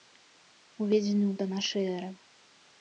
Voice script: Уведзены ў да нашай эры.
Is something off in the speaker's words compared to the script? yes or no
no